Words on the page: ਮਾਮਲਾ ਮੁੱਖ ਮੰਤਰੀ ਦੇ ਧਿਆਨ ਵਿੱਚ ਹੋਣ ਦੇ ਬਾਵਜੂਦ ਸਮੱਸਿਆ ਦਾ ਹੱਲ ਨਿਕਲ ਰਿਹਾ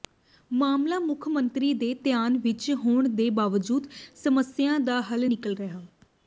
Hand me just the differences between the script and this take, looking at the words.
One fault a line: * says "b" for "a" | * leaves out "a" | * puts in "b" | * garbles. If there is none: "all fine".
all fine